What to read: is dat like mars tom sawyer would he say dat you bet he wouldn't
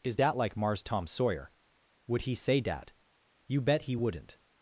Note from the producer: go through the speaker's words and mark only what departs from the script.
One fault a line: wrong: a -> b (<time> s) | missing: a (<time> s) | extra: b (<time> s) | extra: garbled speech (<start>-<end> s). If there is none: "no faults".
no faults